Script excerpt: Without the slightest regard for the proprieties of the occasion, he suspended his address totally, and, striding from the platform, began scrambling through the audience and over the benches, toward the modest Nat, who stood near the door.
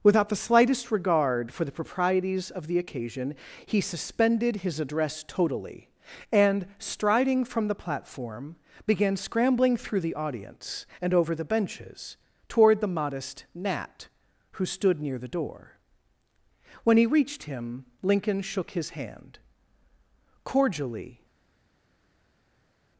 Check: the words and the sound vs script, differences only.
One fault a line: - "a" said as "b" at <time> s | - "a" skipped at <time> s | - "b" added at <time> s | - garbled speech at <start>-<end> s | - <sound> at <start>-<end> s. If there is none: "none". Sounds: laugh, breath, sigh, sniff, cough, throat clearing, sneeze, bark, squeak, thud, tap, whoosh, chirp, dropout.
- "When he reached him Lincoln shook his hand cordially" added at 16.8 s